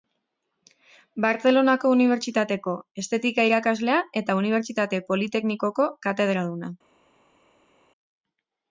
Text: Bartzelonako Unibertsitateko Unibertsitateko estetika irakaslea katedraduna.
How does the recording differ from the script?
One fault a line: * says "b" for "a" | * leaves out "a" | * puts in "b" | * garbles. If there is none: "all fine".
* leaves out "Unibertsitateko"
* puts in "eta Unibertsitate Politeknikoko"